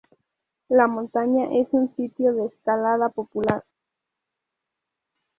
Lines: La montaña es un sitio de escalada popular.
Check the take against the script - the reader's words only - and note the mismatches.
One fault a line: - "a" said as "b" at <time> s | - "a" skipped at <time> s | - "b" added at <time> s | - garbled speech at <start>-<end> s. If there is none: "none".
none